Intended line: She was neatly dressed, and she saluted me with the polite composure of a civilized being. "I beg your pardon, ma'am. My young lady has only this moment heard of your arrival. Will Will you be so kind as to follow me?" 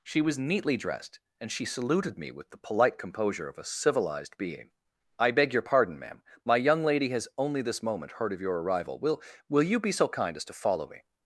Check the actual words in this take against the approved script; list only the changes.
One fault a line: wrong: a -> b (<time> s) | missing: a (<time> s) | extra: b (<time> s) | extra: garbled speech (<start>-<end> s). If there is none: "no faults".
no faults